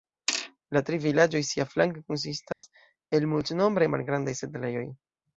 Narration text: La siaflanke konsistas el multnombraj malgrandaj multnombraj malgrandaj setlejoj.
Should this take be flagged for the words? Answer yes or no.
yes